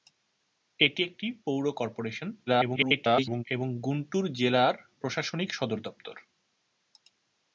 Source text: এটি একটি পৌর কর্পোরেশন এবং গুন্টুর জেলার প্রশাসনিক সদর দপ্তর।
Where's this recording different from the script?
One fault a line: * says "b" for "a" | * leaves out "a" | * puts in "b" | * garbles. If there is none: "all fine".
* garbles